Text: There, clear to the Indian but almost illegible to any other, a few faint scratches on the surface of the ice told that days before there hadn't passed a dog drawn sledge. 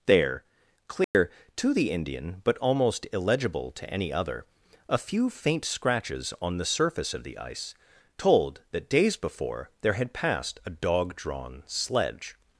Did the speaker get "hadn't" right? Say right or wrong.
wrong